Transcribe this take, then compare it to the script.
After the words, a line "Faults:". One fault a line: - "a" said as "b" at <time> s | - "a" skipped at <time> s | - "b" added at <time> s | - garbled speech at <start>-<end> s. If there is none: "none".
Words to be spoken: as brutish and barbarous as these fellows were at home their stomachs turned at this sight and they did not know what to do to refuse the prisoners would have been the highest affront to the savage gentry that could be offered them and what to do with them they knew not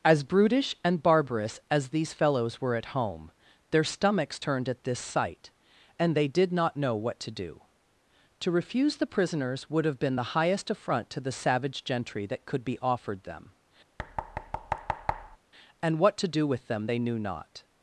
as brutish and barbarous as these fellows were at home their stomachs turned at this sight and they did not know what to do to refuse the prisoners would have been the highest affront to the savage gentry that could be offered them and what to do with them they knew not
Faults:
none